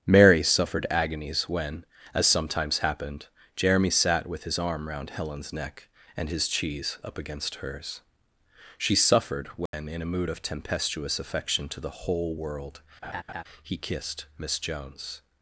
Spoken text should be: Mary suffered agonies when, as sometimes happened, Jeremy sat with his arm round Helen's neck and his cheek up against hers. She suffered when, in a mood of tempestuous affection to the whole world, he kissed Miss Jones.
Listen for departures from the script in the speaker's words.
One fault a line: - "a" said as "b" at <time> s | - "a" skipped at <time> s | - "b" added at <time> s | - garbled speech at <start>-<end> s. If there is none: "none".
- "cheek" said as "cheese" at 6.5 s